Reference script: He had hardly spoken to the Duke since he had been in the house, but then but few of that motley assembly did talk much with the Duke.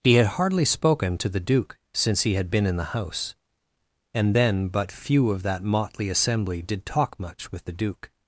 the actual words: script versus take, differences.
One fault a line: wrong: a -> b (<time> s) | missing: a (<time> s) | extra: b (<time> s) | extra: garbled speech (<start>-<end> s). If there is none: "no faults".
wrong: but -> and (4.1 s)